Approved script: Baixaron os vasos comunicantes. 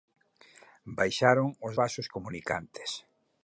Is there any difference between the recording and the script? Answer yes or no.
no